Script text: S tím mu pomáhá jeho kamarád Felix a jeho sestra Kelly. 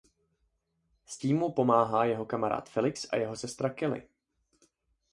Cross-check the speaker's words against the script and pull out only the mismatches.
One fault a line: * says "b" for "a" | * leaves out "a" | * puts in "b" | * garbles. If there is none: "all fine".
all fine